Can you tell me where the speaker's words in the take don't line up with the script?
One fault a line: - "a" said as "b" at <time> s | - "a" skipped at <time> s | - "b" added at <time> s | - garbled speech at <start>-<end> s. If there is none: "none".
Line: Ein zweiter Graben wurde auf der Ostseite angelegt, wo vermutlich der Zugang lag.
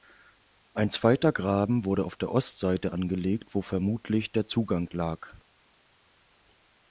none